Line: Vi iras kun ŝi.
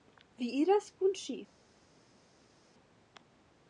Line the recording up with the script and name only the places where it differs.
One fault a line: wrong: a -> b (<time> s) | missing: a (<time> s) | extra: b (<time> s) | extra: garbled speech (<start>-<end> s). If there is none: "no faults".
no faults